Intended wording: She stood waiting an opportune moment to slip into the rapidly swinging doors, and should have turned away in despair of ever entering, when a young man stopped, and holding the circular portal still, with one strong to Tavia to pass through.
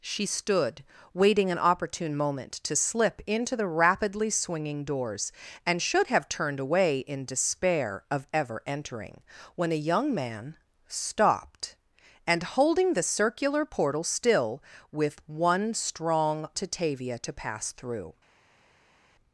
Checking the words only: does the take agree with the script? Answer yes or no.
yes